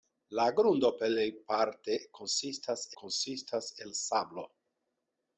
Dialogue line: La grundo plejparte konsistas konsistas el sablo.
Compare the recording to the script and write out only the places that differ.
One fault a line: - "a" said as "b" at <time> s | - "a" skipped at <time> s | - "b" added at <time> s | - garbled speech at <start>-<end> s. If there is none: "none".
none